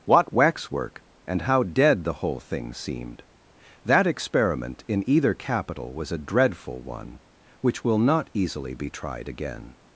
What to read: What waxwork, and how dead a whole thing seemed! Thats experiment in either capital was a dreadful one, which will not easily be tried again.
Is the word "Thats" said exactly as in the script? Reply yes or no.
no